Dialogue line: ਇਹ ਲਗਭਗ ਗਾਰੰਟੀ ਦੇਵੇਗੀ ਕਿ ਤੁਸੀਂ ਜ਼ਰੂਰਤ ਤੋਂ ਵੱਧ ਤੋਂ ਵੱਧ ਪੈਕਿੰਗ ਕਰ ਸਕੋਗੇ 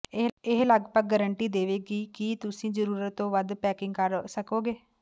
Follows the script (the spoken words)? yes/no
no